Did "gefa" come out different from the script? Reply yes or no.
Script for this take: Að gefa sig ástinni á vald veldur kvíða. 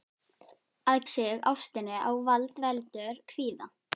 yes